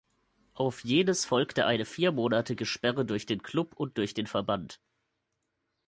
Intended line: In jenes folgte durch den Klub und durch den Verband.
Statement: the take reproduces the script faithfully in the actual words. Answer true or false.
false